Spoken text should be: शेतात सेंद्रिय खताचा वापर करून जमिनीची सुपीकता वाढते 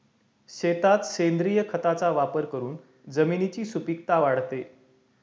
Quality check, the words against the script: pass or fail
pass